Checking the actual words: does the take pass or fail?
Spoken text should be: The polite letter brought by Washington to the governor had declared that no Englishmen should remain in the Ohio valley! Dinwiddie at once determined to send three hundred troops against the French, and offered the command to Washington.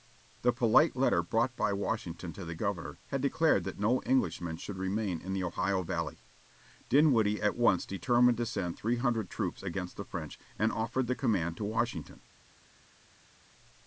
pass